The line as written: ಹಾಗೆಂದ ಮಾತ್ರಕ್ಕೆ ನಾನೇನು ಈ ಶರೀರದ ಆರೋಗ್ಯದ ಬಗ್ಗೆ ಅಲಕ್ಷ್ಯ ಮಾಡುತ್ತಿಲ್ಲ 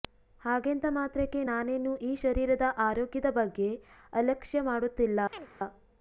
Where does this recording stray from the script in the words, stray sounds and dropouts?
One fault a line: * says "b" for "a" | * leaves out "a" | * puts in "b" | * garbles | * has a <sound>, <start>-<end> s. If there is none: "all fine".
* has a chirp, 5.3-5.5 s